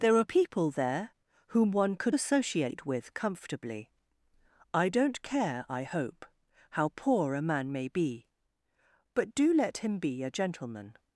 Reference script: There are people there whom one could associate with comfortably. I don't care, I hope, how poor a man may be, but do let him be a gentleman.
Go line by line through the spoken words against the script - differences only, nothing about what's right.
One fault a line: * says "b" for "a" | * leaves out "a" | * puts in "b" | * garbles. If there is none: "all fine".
all fine